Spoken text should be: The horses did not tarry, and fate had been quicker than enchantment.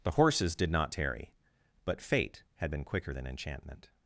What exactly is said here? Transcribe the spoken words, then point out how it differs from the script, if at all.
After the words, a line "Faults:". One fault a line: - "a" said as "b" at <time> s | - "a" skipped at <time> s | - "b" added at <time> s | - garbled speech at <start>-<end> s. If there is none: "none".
The horses did not tarry, but fate had been quicker than enchantment.
Faults:
- "and" said as "but" at 1.8 s